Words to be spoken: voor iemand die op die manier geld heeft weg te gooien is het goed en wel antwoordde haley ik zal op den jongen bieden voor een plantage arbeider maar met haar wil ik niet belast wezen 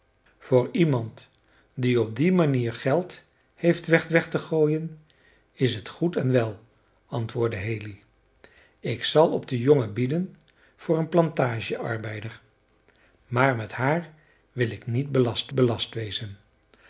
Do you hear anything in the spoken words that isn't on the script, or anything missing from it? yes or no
yes